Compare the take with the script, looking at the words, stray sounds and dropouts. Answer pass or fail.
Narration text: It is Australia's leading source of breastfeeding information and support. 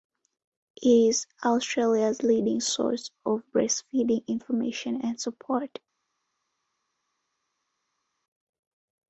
pass